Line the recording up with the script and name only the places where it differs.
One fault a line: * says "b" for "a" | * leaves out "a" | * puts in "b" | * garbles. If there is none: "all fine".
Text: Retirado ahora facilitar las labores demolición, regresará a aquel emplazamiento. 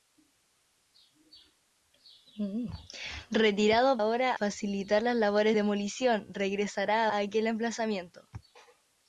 all fine